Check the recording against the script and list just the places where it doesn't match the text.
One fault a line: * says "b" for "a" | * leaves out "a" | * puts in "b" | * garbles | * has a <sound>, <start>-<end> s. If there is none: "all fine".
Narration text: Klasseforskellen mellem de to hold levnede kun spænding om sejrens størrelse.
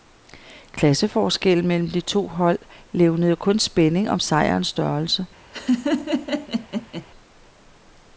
* has a laugh, 5.5-7.1 s